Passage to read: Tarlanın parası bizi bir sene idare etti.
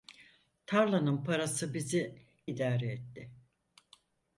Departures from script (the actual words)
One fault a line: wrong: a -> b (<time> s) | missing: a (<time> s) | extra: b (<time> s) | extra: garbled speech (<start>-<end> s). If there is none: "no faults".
missing: bir sene (2.2 s)